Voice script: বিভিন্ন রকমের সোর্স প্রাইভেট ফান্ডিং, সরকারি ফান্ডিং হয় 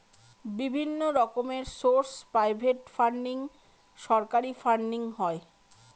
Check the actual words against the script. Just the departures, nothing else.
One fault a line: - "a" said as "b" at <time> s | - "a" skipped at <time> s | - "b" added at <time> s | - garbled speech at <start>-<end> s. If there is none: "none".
none